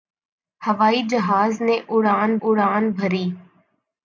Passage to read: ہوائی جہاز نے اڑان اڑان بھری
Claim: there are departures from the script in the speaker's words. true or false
false